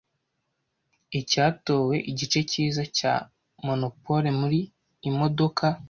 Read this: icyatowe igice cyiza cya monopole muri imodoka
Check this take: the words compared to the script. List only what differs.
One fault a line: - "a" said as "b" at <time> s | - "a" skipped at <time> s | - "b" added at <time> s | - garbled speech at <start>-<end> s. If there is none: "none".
none